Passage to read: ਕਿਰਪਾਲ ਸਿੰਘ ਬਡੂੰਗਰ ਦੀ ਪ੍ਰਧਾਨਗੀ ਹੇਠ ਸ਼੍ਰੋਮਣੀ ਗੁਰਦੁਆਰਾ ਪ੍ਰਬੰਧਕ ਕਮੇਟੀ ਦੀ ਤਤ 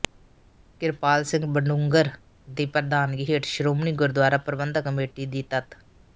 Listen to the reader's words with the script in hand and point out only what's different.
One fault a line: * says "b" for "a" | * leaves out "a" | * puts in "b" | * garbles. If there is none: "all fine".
all fine